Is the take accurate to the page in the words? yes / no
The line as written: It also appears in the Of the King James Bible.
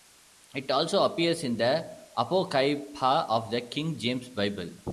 no